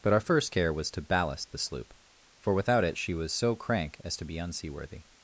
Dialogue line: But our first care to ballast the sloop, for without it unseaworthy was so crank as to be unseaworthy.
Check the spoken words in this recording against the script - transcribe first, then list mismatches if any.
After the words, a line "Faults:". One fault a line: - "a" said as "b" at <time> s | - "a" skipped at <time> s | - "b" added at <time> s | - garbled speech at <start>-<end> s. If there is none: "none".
But our first care was to ballast the sloop, for without it she was so crank as to be unseaworthy.
Faults:
- "was" added at 0.7 s
- "unseaworthy" said as "she" at 3.0 s